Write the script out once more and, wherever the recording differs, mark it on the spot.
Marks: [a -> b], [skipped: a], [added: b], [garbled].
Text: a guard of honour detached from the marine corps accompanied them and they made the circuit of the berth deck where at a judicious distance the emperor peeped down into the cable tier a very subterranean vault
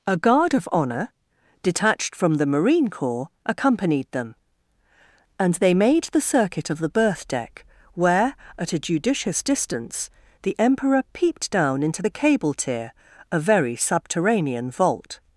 a guard of honour detached from the marine corps accompanied them and they made the circuit of the berth deck where at a judicious distance the emperor peeped down into the cable tier a very subterranean vault